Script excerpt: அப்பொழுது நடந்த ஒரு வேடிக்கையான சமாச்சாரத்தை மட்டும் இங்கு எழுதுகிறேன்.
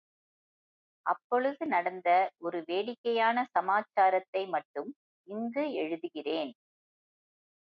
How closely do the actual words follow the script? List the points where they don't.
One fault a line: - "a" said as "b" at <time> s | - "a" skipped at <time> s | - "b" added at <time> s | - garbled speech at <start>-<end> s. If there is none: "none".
none